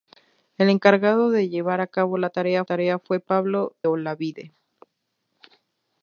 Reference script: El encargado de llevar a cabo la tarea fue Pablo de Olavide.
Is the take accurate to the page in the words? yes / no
no